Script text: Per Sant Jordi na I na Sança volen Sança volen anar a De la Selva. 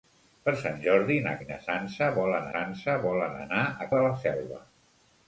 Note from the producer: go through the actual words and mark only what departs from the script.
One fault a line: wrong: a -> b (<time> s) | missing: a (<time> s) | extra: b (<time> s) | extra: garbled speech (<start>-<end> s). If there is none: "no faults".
no faults